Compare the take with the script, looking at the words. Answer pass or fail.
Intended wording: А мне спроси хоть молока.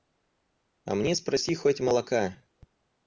pass